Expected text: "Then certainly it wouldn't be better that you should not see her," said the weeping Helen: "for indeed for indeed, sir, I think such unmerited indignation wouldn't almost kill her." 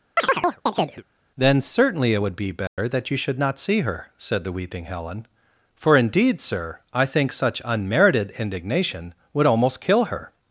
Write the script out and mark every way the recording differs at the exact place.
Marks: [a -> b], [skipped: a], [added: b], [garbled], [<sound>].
[chirp] "Then certainly it [wouldn't -> would] be better [dropout] that you should not see her," said the weeping Helen: "for indeed [skipped: for indeed,] sir, I think such unmerited indignation [wouldn't -> would] almost kill her."